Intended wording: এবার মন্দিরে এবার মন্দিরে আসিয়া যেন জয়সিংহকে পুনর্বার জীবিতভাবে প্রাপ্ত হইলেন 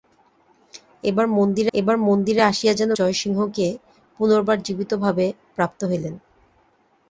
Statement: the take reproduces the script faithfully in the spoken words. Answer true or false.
true